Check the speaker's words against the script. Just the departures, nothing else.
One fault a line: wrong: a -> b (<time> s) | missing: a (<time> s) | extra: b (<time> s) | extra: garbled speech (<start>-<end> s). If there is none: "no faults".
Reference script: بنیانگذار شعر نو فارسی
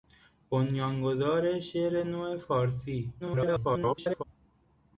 extra: garbled speech (3.2-4.2 s)